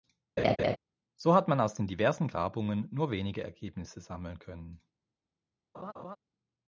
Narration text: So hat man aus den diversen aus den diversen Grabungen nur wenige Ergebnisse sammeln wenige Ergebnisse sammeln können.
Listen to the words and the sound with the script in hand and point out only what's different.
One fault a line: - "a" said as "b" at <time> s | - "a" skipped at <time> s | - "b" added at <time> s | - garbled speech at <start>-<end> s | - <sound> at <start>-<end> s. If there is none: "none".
- laugh at 0.4-0.8 s
- "aus den diversen" skipped at 2.3 s
- "wenige Ergebnisse sammeln" skipped at 4.4 s
- laugh at 5.7-6.2 s